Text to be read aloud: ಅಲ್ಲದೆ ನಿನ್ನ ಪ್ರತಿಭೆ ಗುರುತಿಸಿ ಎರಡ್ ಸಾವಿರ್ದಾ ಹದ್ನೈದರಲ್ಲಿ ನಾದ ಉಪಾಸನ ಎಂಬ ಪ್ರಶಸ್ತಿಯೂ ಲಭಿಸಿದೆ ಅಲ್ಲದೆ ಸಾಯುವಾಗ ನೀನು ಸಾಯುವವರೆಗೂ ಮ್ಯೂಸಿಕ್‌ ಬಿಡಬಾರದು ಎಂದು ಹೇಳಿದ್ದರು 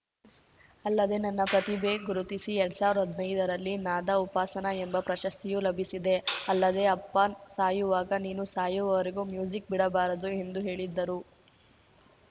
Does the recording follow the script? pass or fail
fail